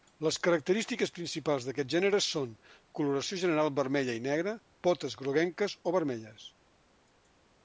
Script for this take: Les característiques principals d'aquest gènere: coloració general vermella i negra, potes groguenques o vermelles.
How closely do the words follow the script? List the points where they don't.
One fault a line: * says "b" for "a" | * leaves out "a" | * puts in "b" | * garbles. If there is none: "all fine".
* puts in "són"